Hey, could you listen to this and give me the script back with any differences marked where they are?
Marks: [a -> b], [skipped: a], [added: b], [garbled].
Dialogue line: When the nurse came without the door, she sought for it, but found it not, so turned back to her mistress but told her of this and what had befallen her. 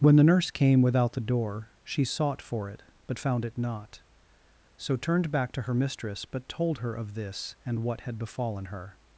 When the nurse came without the door, she sought for it, but found it not, so turned back to her mistress but told her of this and what had befallen her.